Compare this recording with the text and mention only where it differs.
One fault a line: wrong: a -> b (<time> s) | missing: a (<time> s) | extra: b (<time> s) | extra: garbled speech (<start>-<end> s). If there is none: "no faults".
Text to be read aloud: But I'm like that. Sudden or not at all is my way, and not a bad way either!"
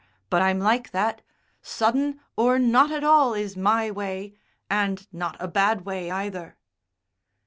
no faults